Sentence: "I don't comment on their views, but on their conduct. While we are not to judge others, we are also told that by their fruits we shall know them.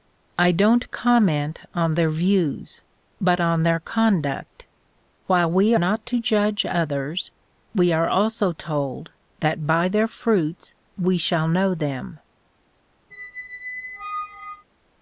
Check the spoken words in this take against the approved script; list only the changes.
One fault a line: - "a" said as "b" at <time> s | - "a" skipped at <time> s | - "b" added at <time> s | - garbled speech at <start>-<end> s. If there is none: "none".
- "are" skipped at 5.8 s